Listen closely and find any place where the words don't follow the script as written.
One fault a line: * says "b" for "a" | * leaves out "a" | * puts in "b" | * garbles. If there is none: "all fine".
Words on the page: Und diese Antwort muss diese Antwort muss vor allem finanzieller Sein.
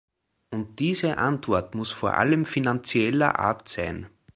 * leaves out "diese Antwort muss"
* puts in "Art"